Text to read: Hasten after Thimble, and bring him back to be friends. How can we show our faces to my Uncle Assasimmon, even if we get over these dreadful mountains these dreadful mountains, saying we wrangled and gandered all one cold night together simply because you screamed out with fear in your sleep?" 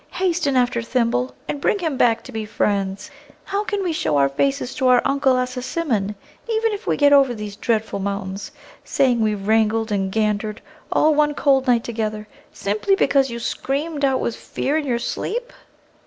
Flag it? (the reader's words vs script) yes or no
yes